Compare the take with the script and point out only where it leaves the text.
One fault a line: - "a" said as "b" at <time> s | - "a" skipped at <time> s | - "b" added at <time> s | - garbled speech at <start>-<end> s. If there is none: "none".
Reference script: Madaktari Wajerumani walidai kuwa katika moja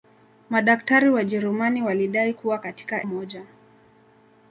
none